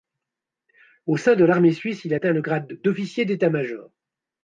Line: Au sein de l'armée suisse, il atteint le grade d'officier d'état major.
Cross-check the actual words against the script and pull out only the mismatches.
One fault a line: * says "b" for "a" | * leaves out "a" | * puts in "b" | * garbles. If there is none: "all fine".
all fine